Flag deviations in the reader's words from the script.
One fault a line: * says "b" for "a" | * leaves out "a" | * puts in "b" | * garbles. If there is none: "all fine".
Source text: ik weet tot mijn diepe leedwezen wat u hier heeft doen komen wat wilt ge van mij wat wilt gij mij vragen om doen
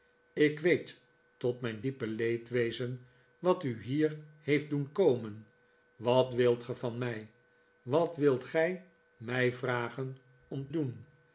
all fine